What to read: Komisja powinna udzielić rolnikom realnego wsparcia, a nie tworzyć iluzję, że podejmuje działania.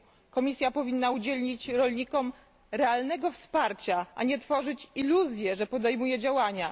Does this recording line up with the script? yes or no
yes